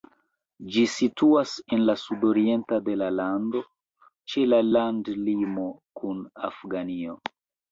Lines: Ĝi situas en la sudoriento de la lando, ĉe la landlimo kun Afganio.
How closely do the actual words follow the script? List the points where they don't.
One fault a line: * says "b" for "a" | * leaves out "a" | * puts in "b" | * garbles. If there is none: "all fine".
all fine